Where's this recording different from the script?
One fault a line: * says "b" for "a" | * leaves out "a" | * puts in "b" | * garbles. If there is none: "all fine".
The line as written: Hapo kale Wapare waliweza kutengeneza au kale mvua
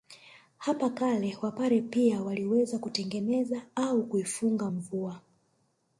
* puts in "pia"
* says "kuifunga" for "kale"